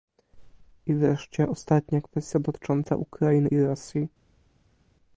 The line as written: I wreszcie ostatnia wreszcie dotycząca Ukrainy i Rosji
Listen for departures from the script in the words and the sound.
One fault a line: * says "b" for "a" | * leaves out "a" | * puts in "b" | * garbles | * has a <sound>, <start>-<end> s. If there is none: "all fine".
* says "kwestia" for "wreszcie"